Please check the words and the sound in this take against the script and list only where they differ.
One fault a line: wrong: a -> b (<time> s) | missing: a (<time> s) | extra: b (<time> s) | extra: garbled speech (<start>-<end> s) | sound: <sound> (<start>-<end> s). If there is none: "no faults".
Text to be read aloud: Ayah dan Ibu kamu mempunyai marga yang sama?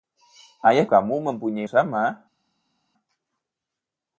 missing: dan Ibu (0.9 s)
missing: marga yang (1.7 s)